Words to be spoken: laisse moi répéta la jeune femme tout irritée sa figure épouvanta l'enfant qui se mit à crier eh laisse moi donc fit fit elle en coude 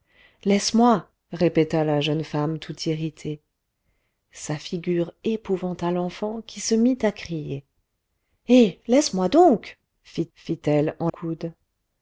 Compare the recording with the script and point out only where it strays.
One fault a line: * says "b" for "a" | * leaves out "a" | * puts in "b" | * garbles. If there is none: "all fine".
all fine